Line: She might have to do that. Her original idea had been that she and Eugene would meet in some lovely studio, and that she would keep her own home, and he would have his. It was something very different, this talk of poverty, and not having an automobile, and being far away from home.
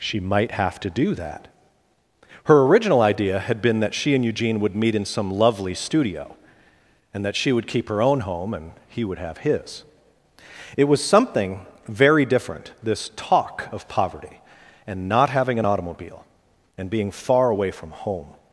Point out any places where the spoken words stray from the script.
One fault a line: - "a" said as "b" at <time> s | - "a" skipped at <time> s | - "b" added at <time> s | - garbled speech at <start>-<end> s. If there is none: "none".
none